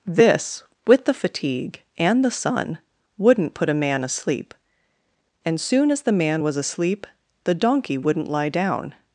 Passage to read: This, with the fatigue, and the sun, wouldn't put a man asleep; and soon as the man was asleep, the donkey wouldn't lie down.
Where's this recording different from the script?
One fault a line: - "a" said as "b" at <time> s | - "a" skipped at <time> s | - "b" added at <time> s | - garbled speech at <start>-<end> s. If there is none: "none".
none